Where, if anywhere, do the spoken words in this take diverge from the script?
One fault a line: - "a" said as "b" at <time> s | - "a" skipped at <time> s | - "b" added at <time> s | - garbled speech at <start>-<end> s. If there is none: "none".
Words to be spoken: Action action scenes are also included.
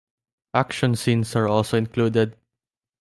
- "action" skipped at 0.9 s